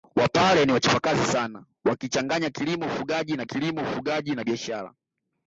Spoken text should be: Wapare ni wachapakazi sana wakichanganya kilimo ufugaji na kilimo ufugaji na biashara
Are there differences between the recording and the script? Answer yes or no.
no